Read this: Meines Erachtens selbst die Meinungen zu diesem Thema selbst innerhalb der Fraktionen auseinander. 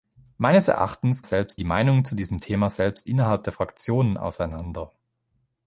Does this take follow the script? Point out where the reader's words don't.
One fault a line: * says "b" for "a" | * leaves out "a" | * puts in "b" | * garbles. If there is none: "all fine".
all fine